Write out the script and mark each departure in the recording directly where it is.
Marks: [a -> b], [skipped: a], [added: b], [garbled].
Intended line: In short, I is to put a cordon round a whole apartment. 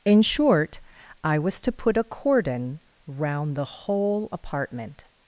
In short, I [is -> was] to put a cordon round [a -> the] whole apartment.